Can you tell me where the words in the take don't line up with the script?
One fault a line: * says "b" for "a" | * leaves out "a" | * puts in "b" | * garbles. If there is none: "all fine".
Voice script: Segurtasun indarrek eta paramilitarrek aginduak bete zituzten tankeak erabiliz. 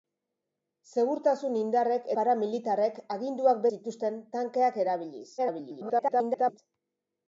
* leaves out "eta"
* leaves out "bete"
* garbles